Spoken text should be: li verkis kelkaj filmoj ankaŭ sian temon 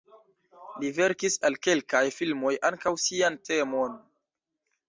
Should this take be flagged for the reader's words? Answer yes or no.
yes